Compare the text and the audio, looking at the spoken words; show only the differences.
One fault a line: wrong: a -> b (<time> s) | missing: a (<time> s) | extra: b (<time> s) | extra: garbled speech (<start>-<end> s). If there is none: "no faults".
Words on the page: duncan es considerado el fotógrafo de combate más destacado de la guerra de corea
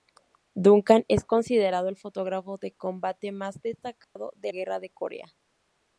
missing: la (4.5 s)